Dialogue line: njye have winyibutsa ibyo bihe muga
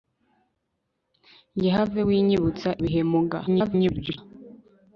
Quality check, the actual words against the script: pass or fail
fail